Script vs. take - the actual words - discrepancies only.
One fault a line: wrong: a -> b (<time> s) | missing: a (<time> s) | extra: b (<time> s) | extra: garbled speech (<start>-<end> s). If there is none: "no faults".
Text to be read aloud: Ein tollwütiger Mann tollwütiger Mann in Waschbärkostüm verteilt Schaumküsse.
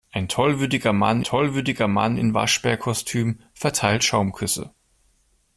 no faults